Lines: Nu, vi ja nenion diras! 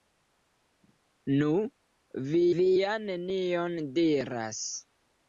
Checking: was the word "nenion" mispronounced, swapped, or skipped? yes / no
no